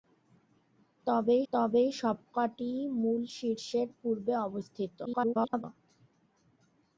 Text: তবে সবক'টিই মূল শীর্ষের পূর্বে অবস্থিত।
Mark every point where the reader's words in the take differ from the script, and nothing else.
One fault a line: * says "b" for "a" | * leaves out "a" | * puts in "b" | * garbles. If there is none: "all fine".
* puts in "তবে"
* garbles